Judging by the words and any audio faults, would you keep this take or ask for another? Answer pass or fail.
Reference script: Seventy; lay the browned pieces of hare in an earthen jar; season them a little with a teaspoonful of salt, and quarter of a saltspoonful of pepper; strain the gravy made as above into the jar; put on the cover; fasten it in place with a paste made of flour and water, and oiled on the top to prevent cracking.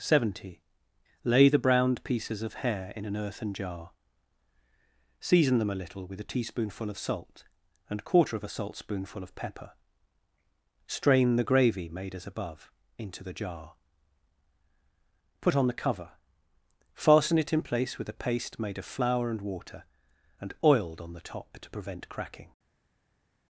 pass